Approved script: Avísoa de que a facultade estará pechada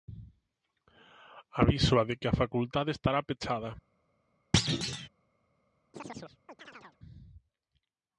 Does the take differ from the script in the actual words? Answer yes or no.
no